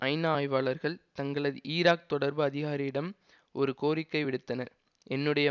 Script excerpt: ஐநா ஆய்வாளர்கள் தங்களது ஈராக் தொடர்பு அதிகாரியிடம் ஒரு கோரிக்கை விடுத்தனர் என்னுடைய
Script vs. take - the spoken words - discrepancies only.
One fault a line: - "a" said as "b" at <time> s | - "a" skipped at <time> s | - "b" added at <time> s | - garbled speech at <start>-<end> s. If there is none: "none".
none